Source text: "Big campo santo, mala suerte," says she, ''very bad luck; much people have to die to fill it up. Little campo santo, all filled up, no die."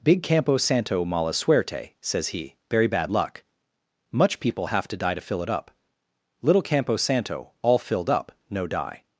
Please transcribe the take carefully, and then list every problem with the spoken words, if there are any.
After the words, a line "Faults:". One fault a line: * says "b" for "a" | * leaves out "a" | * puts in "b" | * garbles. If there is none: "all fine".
"Big campo santo, mala suerte," says he, ''very bad luck; much people have to die to fill it up. Little campo santo, all filled up, no die."
Faults:
* says "he" for "she"